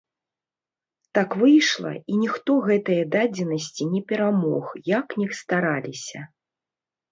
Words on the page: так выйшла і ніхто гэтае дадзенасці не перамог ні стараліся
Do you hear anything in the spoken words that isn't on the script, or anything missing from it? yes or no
yes